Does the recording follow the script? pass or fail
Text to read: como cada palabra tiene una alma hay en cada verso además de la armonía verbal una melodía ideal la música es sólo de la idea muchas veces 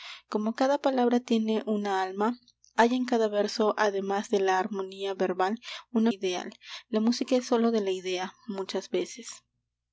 fail